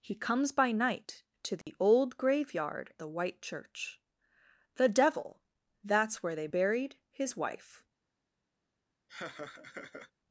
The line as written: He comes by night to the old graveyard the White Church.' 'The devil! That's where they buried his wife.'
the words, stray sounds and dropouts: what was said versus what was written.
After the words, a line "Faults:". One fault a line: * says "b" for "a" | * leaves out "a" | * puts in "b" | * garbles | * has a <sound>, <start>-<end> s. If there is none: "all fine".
He comes by night to the old graveyard the White Church.' 'The devil! That's where they buried his wife.'
Faults:
* has a dropout, 1.6-1.7 s
* has a laugh, 9.1-10.1 s